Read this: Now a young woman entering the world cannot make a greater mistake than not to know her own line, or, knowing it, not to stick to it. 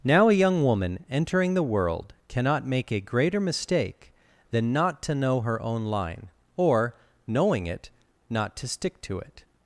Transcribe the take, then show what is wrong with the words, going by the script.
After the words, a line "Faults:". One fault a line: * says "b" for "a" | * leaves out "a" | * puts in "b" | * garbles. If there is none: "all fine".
Now a young woman entering the world cannot make a greater mistake than not to know her own line, or, knowing it, not to stick to it.
Faults:
all fine